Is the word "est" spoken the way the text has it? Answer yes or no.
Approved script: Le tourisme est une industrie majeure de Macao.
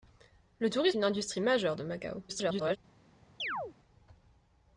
no